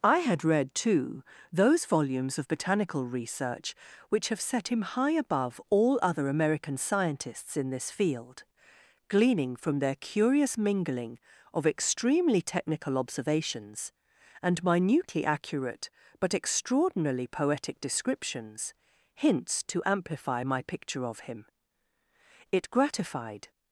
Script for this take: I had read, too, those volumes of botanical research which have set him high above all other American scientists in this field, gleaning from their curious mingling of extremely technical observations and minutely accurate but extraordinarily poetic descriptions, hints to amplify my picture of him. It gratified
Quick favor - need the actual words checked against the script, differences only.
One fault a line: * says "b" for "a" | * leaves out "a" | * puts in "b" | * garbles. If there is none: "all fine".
all fine